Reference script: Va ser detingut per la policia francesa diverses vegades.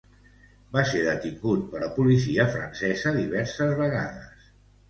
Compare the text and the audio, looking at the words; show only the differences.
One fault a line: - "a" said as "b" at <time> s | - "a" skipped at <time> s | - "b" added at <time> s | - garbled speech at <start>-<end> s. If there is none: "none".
none